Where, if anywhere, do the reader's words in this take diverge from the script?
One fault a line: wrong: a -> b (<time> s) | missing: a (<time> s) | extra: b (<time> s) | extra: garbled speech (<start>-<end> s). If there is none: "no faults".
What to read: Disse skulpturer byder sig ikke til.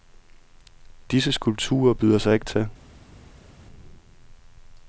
no faults